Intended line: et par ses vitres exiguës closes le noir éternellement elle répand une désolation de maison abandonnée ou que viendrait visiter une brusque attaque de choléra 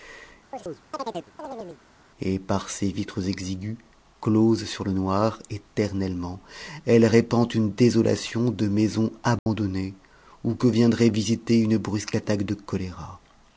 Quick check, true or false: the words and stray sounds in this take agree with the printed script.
false